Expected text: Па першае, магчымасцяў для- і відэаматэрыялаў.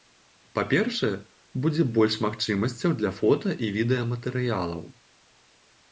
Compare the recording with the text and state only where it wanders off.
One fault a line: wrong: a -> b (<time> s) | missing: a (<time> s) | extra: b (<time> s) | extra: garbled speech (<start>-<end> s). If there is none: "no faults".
extra: будзе больш (1.6 s)
extra: фота (3.2 s)